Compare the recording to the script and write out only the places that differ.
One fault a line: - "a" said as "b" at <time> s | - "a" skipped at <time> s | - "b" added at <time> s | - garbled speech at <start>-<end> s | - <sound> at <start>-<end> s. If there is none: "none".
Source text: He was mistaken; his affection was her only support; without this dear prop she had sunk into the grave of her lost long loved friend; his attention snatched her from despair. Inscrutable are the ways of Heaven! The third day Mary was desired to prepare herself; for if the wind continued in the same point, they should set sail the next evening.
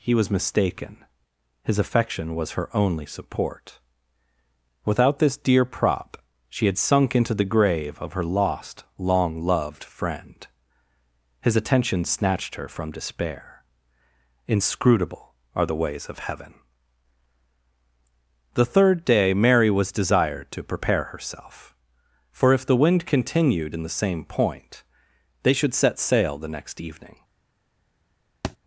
- thud at 28.4-28.6 s